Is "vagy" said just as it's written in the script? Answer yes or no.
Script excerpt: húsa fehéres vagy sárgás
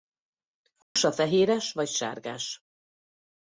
yes